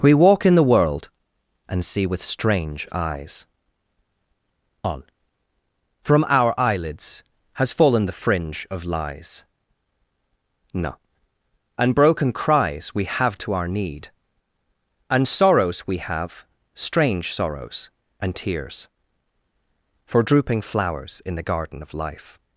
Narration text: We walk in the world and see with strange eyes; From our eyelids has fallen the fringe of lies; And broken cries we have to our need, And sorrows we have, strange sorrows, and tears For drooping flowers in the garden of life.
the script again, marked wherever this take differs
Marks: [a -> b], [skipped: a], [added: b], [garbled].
We walk in the world and see with strange eyes; [added: on] From our eyelids has fallen the fringe of lies; [added: no] And broken cries we have to our need, And sorrows we have, strange sorrows, and tears For drooping flowers in the garden of life.